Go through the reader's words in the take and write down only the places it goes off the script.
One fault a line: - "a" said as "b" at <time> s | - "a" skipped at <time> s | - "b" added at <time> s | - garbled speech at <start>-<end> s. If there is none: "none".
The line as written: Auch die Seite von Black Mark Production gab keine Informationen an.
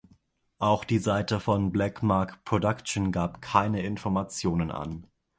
none